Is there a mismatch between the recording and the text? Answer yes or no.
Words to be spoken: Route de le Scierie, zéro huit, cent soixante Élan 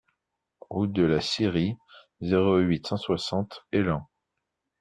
yes